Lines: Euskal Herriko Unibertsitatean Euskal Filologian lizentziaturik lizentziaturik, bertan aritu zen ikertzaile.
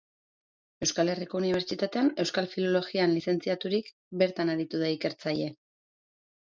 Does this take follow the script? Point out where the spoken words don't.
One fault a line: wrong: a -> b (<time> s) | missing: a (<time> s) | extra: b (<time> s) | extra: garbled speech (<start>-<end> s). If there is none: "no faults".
missing: lizentziaturik (3.9 s)
wrong: zen -> da (4.9 s)